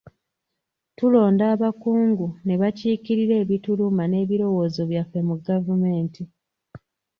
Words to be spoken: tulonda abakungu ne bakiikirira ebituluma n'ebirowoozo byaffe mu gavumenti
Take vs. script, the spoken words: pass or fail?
pass